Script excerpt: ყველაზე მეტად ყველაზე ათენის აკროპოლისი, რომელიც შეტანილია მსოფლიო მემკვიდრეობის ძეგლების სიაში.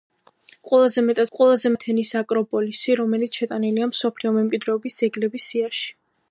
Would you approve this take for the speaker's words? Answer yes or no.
yes